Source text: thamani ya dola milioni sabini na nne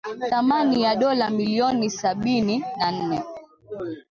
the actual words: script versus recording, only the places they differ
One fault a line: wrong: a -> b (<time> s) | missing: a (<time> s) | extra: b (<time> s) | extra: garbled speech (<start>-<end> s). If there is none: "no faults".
no faults